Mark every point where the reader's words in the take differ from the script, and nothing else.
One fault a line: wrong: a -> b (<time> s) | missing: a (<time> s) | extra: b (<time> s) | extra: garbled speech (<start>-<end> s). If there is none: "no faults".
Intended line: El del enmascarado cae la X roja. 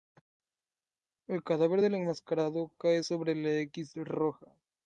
extra: cadáver (1.4 s)
extra: sobre (3.0 s)